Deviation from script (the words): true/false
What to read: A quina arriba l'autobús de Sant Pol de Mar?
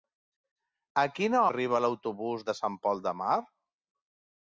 false